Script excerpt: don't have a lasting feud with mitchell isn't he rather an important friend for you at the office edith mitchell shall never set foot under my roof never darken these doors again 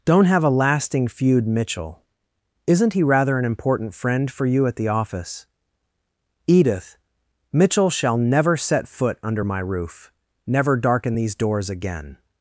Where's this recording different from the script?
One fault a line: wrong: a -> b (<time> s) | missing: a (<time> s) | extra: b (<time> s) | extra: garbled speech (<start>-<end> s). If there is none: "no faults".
missing: with (1.5 s)